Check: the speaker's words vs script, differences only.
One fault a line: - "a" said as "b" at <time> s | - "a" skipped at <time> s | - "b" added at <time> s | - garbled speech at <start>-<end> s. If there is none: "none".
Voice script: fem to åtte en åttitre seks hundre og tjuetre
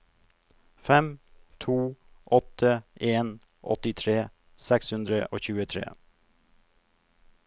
none